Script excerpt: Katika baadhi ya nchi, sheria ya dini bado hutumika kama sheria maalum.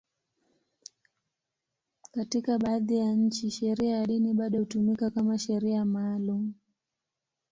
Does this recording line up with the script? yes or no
yes